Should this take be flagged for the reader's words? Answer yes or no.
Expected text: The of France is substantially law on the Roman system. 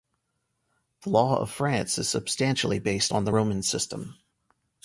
yes